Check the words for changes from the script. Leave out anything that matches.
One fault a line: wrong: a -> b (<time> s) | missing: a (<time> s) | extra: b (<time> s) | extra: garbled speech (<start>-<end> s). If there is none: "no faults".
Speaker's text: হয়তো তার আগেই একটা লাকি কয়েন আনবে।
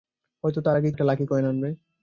no faults